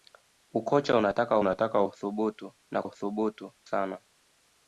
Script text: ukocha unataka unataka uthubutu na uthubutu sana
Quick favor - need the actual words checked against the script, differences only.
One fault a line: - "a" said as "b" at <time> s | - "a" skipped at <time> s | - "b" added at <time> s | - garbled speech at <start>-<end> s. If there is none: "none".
none